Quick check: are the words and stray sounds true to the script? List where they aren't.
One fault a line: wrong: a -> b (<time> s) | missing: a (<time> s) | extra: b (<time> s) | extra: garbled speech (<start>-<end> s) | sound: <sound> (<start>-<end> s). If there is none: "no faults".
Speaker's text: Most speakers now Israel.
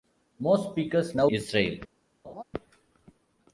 sound: laugh (2.2-2.4 s)